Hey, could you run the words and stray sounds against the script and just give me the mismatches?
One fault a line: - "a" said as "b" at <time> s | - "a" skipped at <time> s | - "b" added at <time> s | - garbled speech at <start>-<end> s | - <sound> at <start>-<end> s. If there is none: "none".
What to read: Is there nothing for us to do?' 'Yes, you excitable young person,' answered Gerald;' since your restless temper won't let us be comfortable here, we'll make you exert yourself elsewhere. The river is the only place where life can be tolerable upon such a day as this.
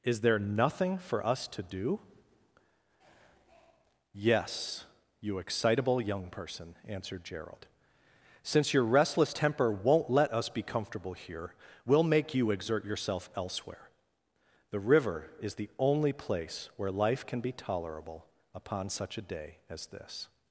none